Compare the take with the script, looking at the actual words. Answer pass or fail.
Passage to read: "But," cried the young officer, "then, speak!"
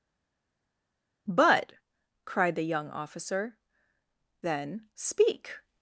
pass